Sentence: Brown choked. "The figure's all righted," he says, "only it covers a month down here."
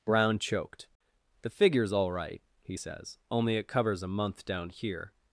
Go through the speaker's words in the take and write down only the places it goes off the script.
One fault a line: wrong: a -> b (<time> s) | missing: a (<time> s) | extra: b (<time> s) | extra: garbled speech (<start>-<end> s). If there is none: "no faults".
wrong: righted -> right (2.1 s)